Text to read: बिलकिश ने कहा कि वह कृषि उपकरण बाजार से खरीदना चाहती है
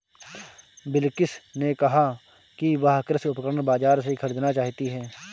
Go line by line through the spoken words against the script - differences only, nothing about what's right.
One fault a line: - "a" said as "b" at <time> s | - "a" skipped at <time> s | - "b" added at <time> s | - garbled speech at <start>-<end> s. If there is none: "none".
none